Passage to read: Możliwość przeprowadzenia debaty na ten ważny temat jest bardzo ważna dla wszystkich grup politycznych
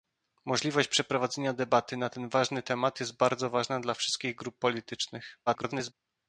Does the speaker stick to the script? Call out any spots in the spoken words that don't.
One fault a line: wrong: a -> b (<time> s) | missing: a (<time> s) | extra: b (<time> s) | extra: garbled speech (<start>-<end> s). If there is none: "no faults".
extra: garbled speech (5.5-5.9 s)